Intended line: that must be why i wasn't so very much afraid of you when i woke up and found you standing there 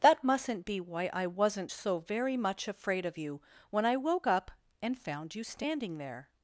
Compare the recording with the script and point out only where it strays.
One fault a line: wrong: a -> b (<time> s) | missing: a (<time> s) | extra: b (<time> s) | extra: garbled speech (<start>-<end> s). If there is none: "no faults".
wrong: must -> mustn't (0.2 s)